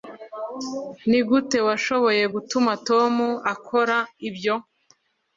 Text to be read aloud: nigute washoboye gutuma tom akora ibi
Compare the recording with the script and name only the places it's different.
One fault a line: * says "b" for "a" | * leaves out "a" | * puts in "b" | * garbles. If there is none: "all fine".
* says "ibyo" for "ibi"